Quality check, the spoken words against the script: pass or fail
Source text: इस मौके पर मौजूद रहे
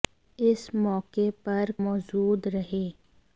pass